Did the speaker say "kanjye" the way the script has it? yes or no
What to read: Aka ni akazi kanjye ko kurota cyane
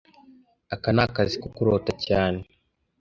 no